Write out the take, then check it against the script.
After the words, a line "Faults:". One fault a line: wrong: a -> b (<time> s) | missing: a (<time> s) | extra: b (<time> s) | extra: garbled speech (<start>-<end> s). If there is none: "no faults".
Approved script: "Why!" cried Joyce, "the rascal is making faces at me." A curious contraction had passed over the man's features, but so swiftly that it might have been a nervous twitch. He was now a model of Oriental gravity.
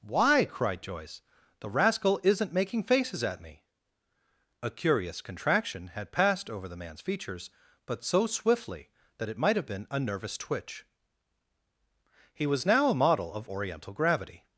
"Why!" cried Joyce, "the rascal isn't making faces at me." A curious contraction had passed over the man's features, but so swiftly that it might have been a nervous twitch. He was now a model of Oriental gravity.
Faults:
wrong: is -> isn't (2.2 s)